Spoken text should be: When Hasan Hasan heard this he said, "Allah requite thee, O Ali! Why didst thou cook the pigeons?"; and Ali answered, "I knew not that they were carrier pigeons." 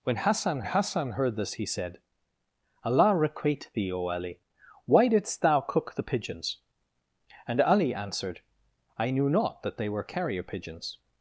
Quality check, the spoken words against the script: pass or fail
pass